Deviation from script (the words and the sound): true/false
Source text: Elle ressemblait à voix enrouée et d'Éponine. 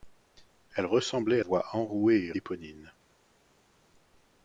false